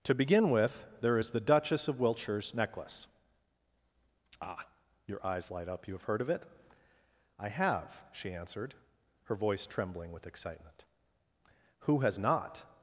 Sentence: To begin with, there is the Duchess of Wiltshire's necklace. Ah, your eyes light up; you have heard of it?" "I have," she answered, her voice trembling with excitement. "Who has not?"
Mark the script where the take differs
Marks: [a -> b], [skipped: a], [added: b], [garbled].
To begin with, there is the Duchess of Wiltshire's necklace. Ah, your eyes light up; you have heard of it?" "I have," she answered, her voice trembling with excitement. "Who has not?"